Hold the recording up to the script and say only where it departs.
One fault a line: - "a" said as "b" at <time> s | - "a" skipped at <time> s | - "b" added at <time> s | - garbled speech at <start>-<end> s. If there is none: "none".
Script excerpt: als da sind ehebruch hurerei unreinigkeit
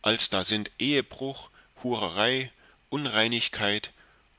none